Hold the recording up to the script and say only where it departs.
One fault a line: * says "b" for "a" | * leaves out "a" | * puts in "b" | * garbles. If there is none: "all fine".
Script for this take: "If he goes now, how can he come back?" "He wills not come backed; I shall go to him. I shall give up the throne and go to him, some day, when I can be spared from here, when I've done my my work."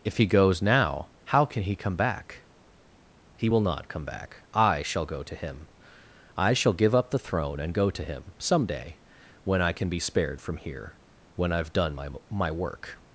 * says "will" for "wills"
* says "back" for "backed"